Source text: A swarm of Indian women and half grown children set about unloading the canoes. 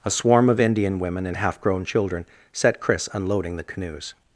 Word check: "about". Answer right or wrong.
wrong